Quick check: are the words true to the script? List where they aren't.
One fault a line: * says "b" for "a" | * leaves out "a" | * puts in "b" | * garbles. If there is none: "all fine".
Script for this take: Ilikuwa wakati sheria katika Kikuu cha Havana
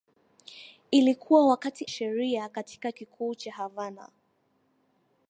all fine